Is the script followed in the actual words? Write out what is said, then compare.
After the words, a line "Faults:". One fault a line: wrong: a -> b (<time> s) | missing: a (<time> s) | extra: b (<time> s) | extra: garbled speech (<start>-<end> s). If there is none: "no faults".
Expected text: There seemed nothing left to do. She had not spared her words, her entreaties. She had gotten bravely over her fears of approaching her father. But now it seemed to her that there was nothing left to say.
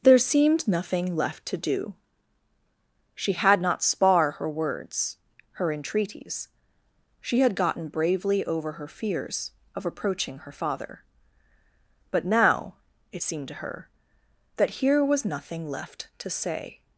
There seemed nothing left to do. She had not spar her words, her entreaties. She had gotten bravely over her fears of approaching her father. But now it seemed to her that here was nothing left to say.
Faults:
wrong: spared -> spar (3.8 s)
wrong: there -> here (14.7 s)